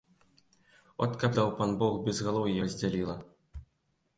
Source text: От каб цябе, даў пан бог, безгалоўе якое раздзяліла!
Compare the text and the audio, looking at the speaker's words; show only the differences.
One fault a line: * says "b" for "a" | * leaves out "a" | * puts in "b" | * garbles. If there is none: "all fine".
* leaves out "цябе"
* leaves out "якое"